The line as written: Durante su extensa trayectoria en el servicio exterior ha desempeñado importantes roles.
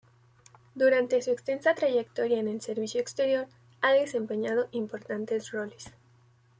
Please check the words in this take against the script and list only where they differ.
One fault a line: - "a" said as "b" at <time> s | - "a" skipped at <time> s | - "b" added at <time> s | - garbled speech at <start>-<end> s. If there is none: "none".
none